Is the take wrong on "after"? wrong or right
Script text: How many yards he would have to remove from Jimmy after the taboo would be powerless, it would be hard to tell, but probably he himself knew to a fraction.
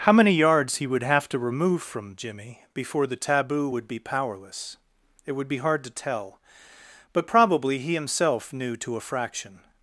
wrong